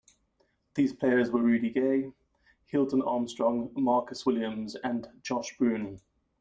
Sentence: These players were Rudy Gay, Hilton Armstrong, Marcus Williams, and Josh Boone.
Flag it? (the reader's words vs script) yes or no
no